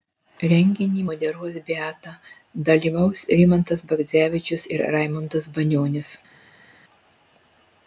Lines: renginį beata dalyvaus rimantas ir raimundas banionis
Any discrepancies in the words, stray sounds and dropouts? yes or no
yes